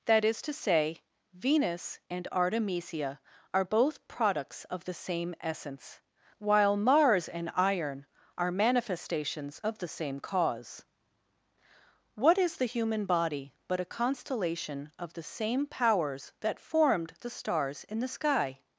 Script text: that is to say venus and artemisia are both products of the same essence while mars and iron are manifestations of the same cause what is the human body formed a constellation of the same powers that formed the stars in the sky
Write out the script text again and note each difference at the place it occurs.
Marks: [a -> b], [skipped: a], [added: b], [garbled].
that is to say venus and artemisia are both products of the same essence while mars and iron are manifestations of the same cause what is the human body [formed -> but] a constellation of the same powers that formed the stars in the sky